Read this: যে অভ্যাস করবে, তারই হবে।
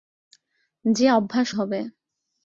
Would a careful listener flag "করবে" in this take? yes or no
yes